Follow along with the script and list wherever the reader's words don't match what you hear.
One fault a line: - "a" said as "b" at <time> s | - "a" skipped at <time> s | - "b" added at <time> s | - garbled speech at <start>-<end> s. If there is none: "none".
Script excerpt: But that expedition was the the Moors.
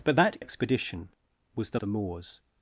none